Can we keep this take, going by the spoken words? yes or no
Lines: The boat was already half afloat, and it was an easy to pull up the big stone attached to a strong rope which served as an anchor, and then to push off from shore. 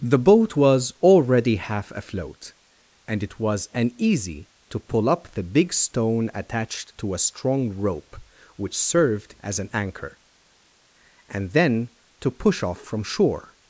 yes